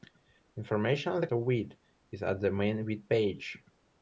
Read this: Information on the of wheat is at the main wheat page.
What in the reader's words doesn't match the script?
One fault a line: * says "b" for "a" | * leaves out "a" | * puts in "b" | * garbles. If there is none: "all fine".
all fine